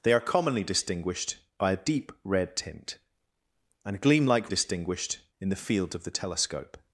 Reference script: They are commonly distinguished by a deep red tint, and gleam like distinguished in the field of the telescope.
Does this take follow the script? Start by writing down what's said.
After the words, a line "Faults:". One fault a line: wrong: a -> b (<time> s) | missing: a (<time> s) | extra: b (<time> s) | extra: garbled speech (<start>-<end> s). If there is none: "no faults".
They are commonly distinguished by a deep red tint, and gleam like distinguished in the field of the telescope.
Faults:
no faults